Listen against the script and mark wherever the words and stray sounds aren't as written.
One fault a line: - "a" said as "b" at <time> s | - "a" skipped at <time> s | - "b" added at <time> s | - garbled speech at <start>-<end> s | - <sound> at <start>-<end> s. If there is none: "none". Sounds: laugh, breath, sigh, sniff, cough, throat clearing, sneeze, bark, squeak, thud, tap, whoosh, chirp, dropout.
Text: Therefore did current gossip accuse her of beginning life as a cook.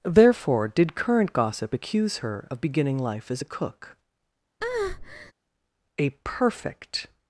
- breath at 4.6-5.3 s
- "A perfect" added at 6.0 s